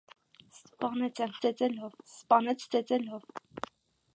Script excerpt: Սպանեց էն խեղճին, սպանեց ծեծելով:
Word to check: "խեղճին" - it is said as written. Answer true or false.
false